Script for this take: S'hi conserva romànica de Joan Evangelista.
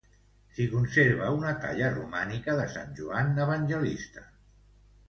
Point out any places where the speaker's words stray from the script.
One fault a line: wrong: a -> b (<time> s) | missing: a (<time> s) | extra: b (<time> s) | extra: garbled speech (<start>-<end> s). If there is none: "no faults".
extra: una talla (1.4 s)
extra: sant (2.8 s)